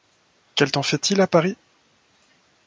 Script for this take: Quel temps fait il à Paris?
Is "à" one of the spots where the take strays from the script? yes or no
no